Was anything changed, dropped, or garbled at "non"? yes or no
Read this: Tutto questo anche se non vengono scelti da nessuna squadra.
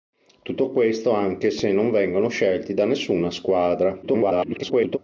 no